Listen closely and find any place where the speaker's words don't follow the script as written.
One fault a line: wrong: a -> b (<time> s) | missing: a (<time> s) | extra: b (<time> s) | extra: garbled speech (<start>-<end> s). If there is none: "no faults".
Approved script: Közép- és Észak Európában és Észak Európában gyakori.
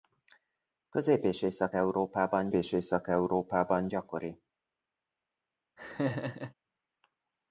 no faults